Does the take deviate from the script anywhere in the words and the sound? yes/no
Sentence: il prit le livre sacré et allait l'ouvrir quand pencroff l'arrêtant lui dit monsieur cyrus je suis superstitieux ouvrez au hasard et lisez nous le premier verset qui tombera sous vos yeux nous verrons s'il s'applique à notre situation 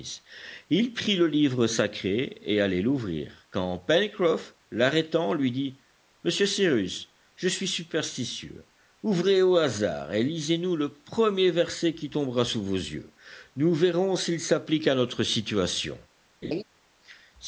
yes